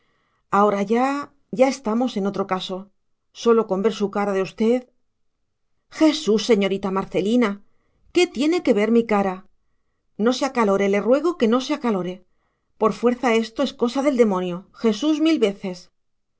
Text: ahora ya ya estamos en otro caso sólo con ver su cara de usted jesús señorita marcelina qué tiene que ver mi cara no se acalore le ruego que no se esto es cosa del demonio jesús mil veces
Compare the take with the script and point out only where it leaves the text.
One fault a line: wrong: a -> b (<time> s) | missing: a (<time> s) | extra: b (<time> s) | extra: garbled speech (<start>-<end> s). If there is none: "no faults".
extra: acalore por fuerza (11.8 s)